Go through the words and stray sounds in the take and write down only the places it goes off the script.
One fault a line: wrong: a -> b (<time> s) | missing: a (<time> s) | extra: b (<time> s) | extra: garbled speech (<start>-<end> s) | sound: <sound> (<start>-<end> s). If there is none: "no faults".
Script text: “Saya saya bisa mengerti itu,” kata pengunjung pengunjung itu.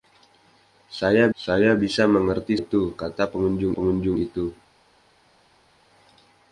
no faults